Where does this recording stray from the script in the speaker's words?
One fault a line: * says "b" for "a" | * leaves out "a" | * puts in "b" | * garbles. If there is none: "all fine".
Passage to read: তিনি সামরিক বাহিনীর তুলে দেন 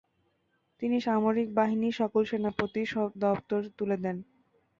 * puts in "সকল সেনাপতির দপ্তর"